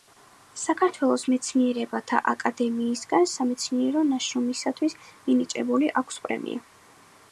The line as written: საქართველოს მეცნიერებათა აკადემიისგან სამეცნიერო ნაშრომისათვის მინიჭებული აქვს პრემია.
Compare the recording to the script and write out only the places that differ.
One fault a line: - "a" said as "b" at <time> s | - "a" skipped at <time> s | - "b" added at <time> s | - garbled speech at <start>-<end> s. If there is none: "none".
none